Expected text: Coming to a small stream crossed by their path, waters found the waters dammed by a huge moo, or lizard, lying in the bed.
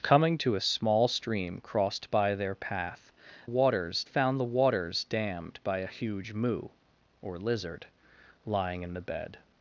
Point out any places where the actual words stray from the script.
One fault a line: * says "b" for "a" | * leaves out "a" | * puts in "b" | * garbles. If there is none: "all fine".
all fine